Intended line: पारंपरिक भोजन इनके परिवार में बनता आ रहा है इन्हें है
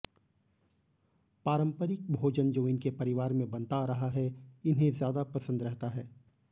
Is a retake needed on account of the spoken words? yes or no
yes